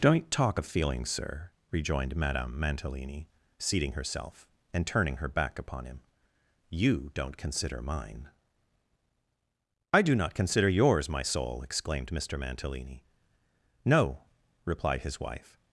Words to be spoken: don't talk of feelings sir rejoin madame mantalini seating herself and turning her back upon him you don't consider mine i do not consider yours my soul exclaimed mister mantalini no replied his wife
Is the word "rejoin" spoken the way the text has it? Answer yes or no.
no